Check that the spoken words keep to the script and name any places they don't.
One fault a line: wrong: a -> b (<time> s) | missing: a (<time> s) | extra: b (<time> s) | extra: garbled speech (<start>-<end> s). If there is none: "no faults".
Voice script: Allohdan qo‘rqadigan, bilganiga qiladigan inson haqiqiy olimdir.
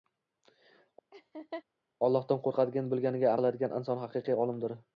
no faults